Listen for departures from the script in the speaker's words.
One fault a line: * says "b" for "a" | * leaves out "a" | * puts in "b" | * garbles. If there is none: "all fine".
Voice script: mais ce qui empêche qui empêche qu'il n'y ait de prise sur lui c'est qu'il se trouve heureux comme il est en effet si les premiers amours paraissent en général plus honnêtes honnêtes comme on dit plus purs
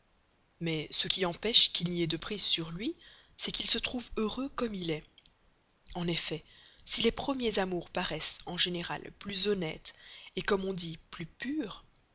* leaves out "qui empêche"
* leaves out "honnêtes"